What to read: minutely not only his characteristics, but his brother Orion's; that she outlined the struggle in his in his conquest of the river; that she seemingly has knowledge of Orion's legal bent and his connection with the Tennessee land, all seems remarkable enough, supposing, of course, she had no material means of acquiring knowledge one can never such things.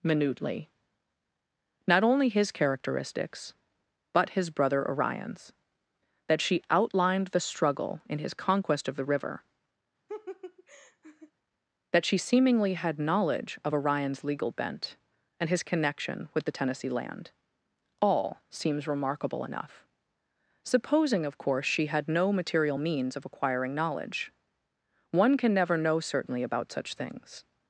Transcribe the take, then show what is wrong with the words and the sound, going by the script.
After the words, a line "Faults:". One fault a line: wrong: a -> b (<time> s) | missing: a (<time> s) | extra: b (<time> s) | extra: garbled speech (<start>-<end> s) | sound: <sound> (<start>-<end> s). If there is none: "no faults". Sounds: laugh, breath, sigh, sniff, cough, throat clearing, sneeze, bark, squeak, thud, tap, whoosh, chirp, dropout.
minutely not only his characteristics, but his brother Orion's; that she outlined the struggle in his conquest of the river; that she seemingly had knowledge of Orion's legal bent and his connection with the Tennessee land, all seems remarkable enough, supposing, of course, she had no material means of acquiring knowledge one can never know certainly about such things.
Faults:
missing: in his (8.3 s)
sound: laugh (10.1-11.3 s)
wrong: has -> had (12.7 s)
extra: know certainly about (25.8 s)